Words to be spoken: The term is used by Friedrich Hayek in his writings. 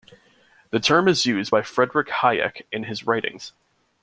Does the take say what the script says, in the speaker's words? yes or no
yes